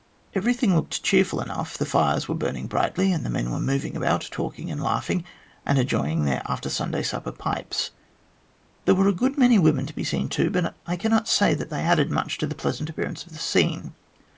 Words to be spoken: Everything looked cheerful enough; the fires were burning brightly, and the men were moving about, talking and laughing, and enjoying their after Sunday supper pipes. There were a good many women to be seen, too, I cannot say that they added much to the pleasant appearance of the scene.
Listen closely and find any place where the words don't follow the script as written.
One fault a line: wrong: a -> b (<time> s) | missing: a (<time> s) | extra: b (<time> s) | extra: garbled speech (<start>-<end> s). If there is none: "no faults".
extra: but (10.5 s)